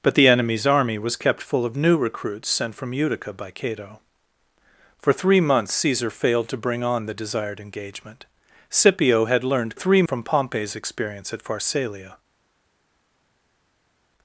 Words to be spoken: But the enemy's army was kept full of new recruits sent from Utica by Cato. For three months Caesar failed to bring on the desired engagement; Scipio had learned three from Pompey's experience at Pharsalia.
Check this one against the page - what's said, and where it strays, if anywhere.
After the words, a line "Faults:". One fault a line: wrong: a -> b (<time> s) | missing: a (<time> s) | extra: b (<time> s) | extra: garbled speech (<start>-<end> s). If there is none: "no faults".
But the enemy's army was kept full of new recruits sent from Utica by Cato. For three months Caesar failed to bring on the desired engagement; Scipio had learned three from Pompey's experience at Pharsalia.
Faults:
no faults